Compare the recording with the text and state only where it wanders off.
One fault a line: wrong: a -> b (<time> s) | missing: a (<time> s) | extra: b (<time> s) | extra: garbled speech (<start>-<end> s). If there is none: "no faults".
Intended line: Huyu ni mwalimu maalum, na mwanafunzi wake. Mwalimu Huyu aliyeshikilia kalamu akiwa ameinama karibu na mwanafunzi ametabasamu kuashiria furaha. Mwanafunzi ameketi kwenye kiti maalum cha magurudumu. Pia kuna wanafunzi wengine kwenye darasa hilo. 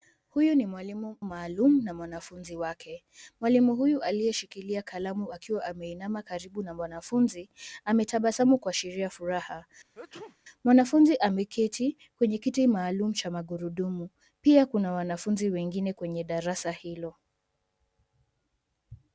no faults